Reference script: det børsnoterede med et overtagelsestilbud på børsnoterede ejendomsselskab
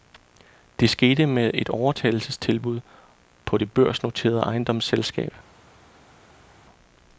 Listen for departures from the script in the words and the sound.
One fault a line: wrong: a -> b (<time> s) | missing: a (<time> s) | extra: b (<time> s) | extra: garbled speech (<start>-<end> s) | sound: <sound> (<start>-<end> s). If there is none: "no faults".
wrong: børsnoterede -> skete (0.9 s)
extra: det (3.6 s)